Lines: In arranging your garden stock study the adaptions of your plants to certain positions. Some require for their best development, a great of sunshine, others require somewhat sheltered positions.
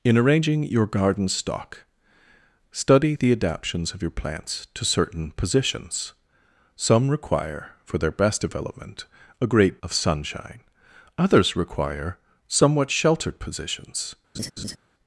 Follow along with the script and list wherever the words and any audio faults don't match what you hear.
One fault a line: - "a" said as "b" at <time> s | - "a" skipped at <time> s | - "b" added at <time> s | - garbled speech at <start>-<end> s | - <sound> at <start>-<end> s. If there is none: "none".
- laugh at 14.3-14.8 s